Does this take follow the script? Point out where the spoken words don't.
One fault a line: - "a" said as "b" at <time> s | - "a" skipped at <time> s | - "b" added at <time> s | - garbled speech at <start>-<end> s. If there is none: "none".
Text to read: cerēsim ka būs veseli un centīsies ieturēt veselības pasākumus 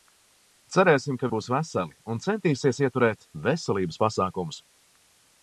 none